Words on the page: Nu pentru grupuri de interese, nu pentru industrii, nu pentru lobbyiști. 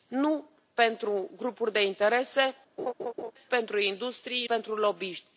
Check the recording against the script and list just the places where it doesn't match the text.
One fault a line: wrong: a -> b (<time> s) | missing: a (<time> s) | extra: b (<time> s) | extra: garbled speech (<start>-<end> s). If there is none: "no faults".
missing: nu (2.5 s)
missing: nu (4.5 s)